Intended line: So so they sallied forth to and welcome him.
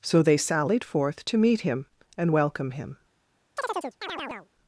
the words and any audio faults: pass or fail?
fail